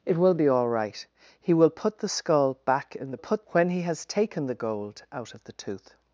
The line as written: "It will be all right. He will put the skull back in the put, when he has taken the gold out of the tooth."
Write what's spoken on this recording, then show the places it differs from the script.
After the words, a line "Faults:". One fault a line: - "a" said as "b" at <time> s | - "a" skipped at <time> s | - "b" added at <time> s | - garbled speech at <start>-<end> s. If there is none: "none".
"It will be all right. He will put the skull back in the put, when he has taken the gold out of the tooth."
Faults:
none